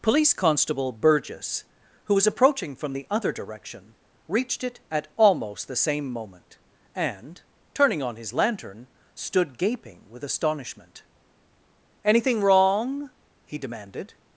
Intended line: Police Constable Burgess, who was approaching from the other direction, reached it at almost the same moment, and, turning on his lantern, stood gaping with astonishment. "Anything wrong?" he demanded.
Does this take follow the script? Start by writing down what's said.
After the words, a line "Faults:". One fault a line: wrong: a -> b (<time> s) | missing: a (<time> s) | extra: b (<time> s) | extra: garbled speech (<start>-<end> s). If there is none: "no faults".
Police Constable Burgess, who was approaching from the other direction, reached it at almost the same moment, and, turning on his lantern, stood gaping with astonishment. "Anything wrong?" he demanded.
Faults:
no faults